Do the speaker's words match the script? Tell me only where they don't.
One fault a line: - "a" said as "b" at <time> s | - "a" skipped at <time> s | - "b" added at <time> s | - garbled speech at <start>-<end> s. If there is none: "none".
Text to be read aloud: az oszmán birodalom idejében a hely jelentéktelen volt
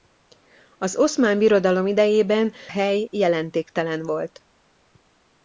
- "a" skipped at 2.5 s